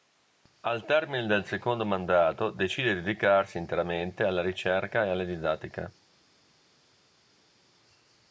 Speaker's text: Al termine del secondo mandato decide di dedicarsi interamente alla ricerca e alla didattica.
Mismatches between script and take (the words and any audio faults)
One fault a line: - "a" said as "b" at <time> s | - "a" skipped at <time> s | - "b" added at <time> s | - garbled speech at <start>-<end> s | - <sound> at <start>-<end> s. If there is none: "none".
none